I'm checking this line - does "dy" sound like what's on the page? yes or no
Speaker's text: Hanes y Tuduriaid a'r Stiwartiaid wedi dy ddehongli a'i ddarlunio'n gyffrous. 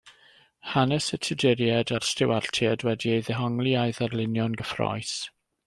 no